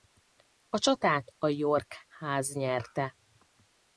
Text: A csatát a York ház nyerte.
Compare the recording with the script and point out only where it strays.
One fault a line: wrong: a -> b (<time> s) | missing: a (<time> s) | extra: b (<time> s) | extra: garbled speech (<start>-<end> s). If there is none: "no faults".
no faults